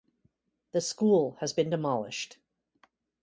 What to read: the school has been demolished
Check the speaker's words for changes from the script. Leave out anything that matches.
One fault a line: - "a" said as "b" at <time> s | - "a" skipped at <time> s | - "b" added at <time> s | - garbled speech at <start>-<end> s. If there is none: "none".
none